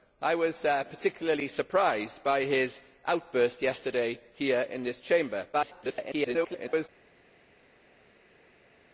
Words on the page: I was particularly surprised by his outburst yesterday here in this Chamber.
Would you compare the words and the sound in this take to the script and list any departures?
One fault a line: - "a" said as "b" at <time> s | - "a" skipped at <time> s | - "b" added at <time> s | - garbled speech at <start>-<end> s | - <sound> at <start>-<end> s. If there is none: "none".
- garbled speech at 5.5-6.9 s